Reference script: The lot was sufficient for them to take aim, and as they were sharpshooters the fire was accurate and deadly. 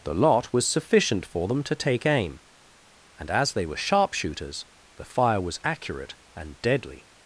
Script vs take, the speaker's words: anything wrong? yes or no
no